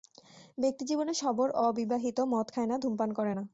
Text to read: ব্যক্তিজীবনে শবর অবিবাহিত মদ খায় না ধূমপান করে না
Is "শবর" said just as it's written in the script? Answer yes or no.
yes